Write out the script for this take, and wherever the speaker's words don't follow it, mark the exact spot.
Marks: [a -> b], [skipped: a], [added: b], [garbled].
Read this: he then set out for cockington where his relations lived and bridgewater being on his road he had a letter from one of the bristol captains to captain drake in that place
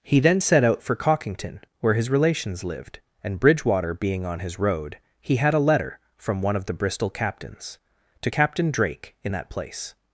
he then set out for cockington where his relations lived and bridgewater being on his road he had a letter from one of the bristol captains to captain drake in that place